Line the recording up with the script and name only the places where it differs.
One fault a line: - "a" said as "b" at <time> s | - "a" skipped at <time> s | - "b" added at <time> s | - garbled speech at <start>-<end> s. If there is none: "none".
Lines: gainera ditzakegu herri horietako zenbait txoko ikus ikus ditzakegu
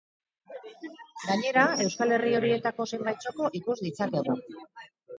- "ditzakegu" said as "euskal" at 1.9 s
- "ikus" skipped at 3.8 s